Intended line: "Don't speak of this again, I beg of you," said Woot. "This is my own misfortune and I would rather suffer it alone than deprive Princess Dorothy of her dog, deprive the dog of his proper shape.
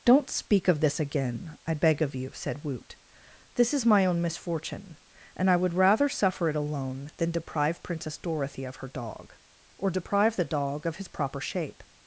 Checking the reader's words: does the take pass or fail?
fail